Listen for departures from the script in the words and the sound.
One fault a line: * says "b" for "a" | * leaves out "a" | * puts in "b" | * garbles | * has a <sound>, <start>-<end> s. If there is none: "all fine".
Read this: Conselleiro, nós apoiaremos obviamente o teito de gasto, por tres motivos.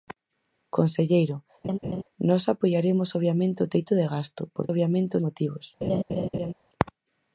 * has a laugh, 1.6-2.0 s
* says "obviamente" for "tres"
* has a laugh, 5.8-6.5 s